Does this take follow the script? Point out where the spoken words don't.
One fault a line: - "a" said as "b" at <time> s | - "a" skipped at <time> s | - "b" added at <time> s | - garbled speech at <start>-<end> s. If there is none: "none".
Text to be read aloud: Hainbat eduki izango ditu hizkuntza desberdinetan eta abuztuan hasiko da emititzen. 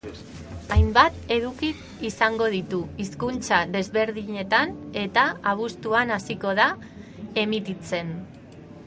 none